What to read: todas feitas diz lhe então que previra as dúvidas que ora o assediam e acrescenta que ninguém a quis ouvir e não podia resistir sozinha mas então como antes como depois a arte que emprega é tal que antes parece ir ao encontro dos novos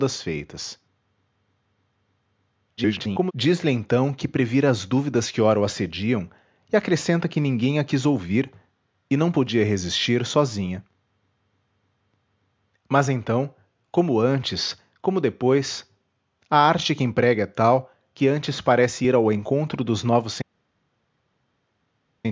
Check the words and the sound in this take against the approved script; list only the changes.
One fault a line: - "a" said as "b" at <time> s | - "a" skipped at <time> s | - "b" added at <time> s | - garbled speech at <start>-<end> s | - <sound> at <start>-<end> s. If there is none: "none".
- garbled speech at 2.8-3.3 s